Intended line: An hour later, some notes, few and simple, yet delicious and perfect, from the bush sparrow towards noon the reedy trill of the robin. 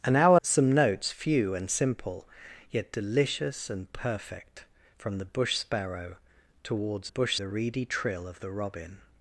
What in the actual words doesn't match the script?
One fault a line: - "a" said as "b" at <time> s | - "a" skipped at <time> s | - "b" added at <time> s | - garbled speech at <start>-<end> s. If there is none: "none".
- "later" skipped at 0.4 s
- "noon" said as "bush" at 7.1 s